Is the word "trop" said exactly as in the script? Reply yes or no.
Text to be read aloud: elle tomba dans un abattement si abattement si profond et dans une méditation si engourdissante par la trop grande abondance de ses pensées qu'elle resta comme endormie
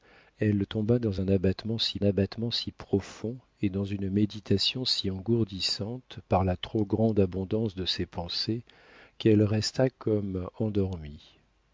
yes